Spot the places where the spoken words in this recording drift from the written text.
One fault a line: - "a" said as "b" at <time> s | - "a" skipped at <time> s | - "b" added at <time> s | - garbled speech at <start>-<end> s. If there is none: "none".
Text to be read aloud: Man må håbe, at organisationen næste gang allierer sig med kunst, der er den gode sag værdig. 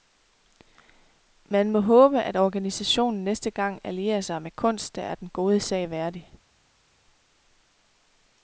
none